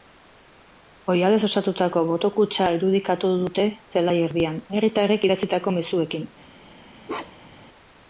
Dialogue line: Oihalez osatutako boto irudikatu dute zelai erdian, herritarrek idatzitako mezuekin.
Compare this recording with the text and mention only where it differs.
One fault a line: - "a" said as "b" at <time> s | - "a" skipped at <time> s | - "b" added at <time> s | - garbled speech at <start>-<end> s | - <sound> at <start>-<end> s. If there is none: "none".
- "kutxa" added at 2.4 s
- bark at 7.1-7.7 s